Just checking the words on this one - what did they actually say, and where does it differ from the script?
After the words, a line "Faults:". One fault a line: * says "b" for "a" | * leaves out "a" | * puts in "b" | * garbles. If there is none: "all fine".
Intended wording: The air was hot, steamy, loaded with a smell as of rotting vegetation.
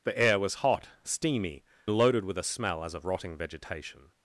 The air was hot, steamy, loaded with a smell as of rotting vegetation.
Faults:
all fine